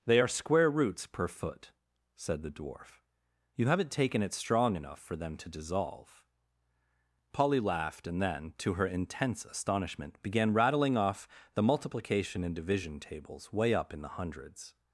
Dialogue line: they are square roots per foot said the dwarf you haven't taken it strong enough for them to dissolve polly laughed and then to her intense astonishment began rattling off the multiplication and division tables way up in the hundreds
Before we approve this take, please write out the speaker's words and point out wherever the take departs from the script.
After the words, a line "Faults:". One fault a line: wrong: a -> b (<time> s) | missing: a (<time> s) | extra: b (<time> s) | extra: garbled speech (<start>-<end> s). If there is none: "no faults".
they are square roots per foot said the dwarf you haven't taken it strong enough for them to dissolve polly laughed and then to her intense astonishment began rattling off the multiplication and division tables way up in the hundreds
Faults:
no faults